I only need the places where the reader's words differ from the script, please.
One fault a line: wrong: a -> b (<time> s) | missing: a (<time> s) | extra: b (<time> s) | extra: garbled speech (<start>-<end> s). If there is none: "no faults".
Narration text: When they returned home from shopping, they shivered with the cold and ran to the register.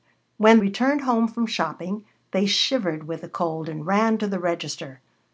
missing: they (0.6 s)